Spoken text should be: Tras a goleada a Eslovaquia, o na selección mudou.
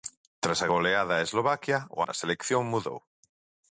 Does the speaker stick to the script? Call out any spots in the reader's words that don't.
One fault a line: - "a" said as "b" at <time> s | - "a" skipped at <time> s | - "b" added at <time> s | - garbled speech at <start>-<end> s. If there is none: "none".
none